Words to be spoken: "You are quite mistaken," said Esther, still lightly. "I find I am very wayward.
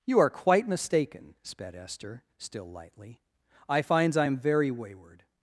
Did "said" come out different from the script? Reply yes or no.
yes